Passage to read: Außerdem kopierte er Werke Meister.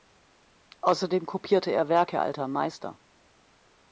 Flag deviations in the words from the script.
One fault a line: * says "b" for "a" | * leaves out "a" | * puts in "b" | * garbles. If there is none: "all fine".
* puts in "Alter"